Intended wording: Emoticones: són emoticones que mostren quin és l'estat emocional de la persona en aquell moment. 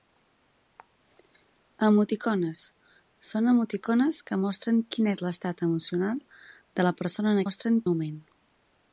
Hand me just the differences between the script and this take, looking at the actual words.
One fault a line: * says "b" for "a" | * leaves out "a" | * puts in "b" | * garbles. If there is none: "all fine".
* says "mostren" for "aquell"